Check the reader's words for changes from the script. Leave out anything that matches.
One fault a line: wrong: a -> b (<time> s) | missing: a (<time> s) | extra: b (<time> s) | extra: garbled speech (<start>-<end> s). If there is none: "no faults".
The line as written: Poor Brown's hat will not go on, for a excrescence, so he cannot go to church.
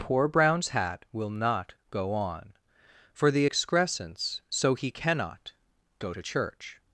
wrong: a -> the (3.3 s)